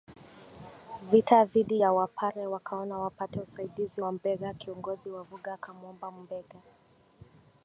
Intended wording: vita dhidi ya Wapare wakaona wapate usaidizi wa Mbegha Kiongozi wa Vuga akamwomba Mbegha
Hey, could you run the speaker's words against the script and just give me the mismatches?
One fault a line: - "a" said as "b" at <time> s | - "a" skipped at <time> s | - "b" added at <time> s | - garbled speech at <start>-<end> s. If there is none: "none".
none